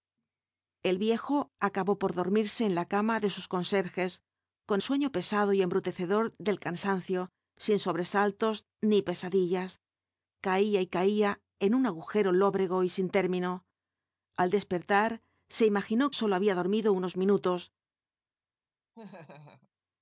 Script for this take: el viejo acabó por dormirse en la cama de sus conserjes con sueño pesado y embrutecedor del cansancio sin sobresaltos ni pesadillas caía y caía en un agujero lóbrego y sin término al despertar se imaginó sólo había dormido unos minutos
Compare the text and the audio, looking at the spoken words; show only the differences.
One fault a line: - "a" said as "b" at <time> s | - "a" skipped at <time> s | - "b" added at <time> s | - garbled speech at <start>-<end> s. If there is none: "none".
none